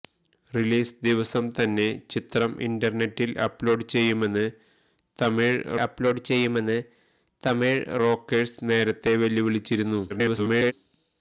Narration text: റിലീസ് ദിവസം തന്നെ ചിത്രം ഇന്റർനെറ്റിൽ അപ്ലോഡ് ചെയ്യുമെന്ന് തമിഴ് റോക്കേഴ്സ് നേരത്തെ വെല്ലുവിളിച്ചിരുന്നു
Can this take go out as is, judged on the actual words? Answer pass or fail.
fail